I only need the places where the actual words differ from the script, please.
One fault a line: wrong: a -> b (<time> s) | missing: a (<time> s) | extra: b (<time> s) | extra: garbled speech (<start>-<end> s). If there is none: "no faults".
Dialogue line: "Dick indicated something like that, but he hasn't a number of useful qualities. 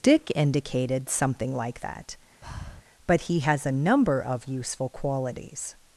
wrong: hasn't -> has (3.4 s)